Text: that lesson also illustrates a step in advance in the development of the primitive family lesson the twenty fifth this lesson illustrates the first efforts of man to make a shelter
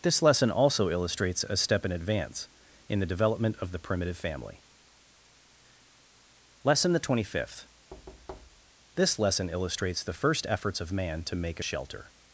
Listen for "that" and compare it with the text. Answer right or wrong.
wrong